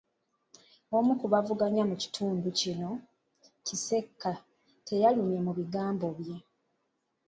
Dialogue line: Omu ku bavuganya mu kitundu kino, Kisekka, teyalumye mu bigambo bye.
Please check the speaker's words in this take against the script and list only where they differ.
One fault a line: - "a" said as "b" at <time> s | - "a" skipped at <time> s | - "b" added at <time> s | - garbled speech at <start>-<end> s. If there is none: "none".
none